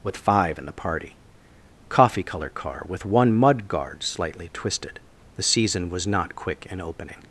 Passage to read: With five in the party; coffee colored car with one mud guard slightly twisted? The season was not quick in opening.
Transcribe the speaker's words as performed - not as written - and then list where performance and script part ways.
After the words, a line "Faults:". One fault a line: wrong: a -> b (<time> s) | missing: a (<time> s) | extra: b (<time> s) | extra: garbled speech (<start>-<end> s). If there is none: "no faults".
With five in the party; coffee color car with one mud guard slightly twisted? The season was not quick in opening.
Faults:
wrong: colored -> color (2.2 s)